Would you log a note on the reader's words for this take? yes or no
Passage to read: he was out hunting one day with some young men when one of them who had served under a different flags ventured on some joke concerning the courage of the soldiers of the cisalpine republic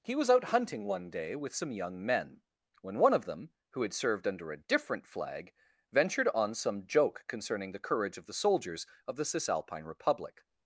yes